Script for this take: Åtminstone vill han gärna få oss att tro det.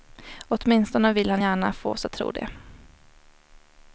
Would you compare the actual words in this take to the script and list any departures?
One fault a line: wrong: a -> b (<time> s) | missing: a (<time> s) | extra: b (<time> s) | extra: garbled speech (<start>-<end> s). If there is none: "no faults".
no faults